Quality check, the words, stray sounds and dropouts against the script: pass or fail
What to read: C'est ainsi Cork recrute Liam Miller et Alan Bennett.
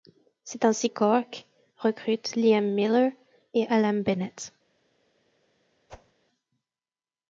fail